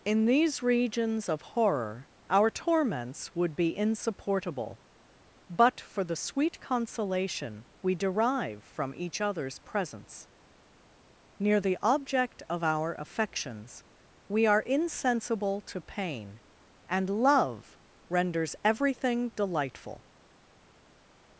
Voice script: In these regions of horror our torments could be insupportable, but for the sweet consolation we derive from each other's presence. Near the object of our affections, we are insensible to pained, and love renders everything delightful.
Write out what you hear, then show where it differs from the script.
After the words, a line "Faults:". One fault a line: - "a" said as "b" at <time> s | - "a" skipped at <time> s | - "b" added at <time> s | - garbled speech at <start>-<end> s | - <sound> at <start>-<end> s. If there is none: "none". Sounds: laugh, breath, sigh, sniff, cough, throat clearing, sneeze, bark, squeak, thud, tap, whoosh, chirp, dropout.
In these regions of horror our torments would be insupportable, but for the sweet consolation we derive from each other's presence. Near the object of our affections, we are insensible to pain, and love renders everything delightful.
Faults:
- "could" said as "would" at 3.4 s
- "pained" said as "pain" at 15.8 s